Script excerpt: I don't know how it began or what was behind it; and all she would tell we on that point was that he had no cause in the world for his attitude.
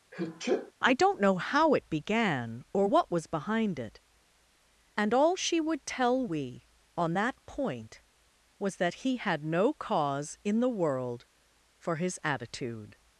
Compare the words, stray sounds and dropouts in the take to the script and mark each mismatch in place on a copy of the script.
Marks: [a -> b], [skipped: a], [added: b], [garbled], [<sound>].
[sneeze] I don't know how it began or what was behind it; and all she would tell we on that point was that he had no cause in the world for his attitude.